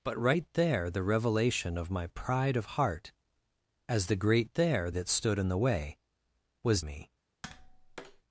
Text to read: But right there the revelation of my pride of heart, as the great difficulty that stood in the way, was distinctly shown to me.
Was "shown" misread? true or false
true